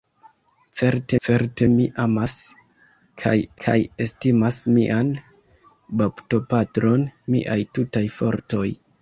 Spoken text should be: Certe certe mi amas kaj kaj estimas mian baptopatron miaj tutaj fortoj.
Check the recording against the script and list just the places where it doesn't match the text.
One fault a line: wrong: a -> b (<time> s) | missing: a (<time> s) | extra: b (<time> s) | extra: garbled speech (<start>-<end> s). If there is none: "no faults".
no faults